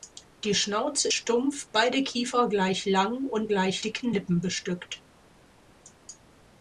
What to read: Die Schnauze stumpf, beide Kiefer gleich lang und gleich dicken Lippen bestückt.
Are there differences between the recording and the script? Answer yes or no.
no